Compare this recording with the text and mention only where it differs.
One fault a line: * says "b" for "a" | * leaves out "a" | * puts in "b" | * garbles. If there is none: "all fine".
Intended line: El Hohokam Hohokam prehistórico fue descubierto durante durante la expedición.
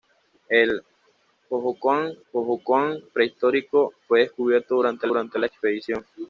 all fine